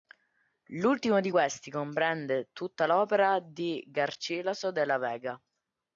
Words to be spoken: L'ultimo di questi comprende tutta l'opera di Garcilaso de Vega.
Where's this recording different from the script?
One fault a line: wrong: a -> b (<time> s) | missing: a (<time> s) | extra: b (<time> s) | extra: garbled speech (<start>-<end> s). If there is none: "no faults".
extra: la (4.8 s)